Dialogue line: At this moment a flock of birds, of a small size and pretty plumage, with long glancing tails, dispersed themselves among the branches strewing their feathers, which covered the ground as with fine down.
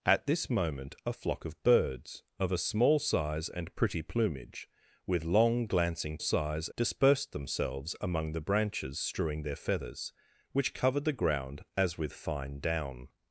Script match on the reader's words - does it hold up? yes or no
no